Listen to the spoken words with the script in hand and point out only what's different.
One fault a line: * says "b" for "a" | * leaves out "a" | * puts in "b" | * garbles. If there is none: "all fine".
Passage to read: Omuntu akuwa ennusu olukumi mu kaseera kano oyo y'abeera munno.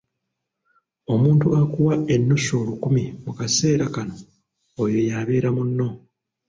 all fine